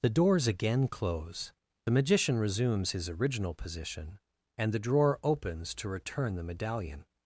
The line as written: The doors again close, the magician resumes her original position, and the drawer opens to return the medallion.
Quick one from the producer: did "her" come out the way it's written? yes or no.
no